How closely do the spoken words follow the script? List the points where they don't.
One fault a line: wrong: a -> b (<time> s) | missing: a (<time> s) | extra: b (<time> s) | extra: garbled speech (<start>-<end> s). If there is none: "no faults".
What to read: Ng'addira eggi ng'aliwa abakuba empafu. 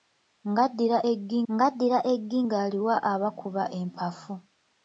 extra: ng'addira eggi (1.5 s)